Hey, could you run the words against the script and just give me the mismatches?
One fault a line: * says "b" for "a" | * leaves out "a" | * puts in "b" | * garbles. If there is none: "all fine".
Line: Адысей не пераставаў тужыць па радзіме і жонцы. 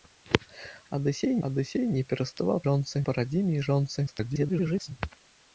* puts in "адысей"
* says "жонцы" for "тужыць"
* garbles